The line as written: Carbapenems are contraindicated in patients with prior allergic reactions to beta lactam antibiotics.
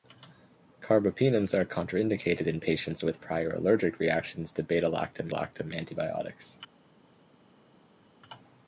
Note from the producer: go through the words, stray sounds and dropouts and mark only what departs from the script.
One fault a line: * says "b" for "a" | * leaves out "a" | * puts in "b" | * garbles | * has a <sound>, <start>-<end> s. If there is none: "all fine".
* puts in "lactam"